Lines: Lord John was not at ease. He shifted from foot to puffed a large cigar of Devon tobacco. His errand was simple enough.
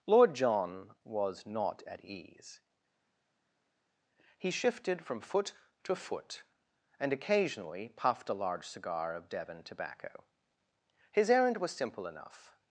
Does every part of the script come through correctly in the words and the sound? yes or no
no